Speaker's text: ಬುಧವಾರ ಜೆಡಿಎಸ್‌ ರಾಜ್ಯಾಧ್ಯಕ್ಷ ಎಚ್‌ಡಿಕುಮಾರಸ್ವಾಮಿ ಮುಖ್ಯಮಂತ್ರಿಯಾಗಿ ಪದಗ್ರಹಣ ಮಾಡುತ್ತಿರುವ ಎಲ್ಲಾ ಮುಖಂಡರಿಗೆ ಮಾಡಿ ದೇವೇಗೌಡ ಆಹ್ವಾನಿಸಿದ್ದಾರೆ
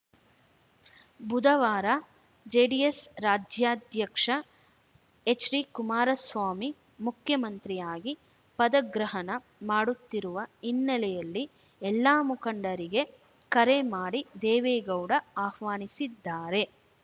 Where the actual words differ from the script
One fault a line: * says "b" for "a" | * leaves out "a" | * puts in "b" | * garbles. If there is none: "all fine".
* puts in "ಹಿನ್ನೆಲೆಯಲ್ಲಿ"
* puts in "ಕರೆ"